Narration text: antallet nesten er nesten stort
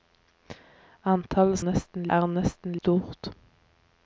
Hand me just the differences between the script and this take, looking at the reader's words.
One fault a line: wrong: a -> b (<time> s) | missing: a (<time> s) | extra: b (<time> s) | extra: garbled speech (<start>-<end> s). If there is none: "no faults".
no faults